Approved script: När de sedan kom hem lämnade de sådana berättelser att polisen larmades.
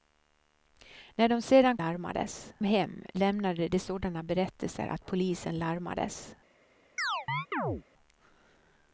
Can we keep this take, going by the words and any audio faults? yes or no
no